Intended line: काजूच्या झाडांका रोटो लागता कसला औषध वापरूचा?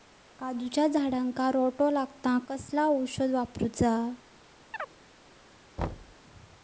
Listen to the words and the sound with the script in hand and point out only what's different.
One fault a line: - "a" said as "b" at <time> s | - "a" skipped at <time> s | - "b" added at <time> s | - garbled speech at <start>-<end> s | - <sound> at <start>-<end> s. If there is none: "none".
- chirp at 4.7-4.9 s
- thud at 5.8-6.2 s